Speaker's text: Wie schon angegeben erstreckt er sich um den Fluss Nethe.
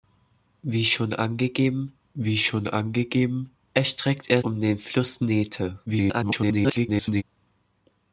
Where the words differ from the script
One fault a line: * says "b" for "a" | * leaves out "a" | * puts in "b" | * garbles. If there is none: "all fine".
* puts in "wie schon angegeben"
* leaves out "sich"
* garbles